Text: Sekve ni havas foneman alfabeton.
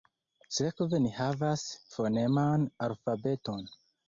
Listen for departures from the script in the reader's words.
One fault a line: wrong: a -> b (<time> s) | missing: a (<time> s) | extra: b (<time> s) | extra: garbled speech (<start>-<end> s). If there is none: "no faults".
no faults